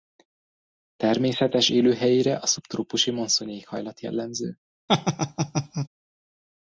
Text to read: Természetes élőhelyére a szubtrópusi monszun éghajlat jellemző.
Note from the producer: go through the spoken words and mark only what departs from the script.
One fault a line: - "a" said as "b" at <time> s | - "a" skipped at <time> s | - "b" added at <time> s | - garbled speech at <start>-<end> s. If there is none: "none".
none